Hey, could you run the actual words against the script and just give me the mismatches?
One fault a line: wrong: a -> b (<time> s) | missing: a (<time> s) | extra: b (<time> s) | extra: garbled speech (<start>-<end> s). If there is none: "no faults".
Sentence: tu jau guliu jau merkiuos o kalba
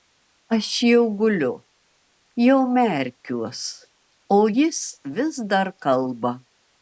wrong: tu -> aš (0.6 s)
extra: jis vis dar (4.5 s)